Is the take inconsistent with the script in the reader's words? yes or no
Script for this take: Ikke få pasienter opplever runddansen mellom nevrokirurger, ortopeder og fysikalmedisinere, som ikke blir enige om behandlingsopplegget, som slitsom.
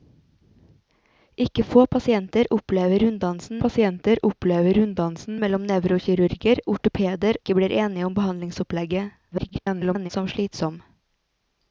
yes